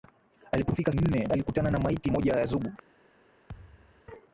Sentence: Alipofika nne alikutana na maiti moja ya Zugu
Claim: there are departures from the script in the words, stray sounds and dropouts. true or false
true